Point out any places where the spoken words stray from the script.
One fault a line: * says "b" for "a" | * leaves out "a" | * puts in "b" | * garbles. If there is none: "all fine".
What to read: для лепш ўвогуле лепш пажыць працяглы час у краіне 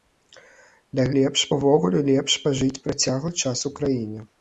all fine